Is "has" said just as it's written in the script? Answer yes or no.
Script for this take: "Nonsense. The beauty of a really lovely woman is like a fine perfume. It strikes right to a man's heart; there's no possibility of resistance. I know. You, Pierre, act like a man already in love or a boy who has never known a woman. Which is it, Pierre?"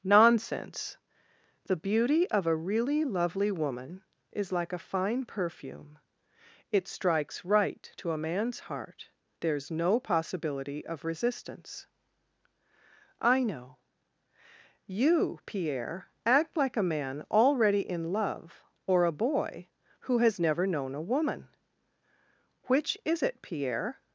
yes